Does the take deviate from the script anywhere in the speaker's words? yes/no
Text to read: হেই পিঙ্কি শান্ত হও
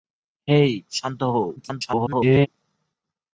yes